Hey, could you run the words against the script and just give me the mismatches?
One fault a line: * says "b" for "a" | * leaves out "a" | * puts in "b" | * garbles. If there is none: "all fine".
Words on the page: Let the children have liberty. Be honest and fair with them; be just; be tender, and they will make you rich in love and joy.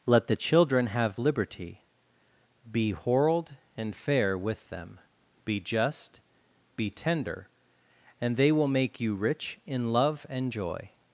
* says "whorled" for "honest"